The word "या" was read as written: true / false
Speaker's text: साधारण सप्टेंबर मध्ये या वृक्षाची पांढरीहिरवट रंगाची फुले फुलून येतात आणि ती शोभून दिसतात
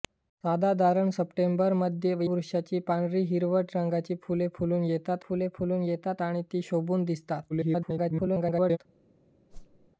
false